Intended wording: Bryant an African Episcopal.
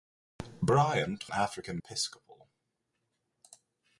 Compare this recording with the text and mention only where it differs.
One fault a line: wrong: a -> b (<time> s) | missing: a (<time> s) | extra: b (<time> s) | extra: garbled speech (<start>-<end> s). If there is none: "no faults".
no faults